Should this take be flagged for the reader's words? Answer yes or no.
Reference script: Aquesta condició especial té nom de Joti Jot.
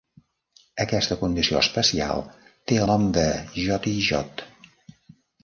no